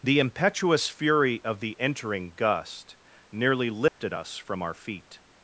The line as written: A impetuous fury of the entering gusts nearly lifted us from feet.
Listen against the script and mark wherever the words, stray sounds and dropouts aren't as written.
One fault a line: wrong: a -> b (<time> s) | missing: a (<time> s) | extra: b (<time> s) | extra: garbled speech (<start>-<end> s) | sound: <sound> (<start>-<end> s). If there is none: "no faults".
wrong: A -> The (0.0 s)
wrong: gusts -> gust (2.3 s)
sound: dropout (3.9-4.0 s)
extra: our (4.6 s)